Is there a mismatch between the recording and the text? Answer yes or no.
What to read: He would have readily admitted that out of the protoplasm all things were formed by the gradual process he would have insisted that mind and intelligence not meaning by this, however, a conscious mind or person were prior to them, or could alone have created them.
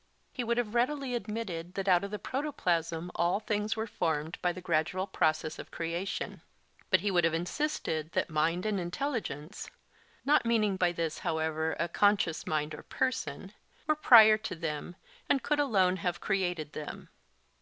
yes